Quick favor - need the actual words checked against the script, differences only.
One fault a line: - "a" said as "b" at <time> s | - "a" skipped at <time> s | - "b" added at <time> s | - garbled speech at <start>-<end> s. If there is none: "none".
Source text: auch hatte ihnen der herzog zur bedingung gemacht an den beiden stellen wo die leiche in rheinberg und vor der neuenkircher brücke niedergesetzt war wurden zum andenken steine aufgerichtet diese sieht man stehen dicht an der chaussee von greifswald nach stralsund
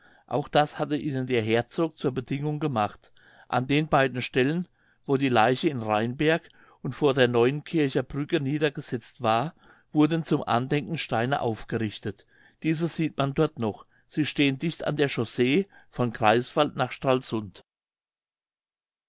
- "das" added at 0.5 s
- "dort noch sie" added at 13.3 s